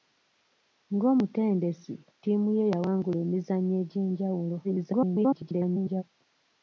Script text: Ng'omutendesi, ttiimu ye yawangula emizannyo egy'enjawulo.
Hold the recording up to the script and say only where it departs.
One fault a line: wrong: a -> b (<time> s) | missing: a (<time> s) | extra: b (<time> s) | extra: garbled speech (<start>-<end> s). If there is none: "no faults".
extra: garbled speech (4.6-6.0 s)